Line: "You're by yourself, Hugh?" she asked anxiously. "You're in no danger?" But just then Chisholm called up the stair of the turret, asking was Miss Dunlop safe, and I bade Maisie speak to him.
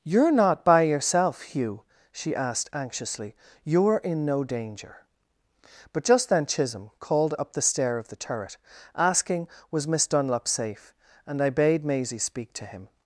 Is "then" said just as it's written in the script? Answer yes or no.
yes